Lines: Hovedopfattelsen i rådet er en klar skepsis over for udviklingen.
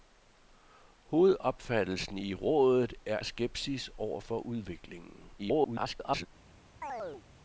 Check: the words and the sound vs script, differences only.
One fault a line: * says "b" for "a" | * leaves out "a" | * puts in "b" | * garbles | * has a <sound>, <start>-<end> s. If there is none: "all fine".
* leaves out "en klar"
* garbles
* has a chirp, 6.8-7.2 s